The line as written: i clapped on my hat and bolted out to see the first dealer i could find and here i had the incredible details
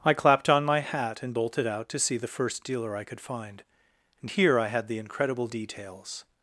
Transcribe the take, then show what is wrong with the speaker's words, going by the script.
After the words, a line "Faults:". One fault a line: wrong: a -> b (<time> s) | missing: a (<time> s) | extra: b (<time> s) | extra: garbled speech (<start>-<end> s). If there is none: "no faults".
i clapped on my hat and bolted out to see the first dealer i could find and here i had the incredible details
Faults:
no faults